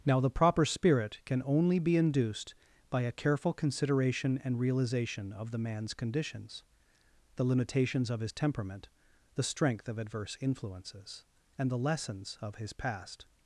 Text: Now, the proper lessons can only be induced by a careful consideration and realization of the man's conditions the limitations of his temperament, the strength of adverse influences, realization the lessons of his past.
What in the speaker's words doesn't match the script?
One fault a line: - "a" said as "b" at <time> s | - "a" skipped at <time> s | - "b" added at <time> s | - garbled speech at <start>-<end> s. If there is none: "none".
- "lessons" said as "spirit" at 0.7 s
- "realization" said as "and" at 11.6 s